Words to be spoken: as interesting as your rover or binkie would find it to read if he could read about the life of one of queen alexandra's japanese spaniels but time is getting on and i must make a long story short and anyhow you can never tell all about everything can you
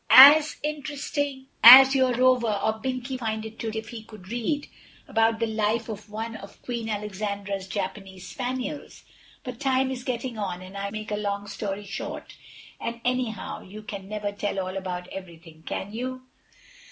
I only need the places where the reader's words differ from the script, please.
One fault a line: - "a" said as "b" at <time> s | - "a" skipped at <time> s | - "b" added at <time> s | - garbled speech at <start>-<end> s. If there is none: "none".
- "would" skipped at 3.2 s
- "read" skipped at 3.7 s
- "must" skipped at 10.9 s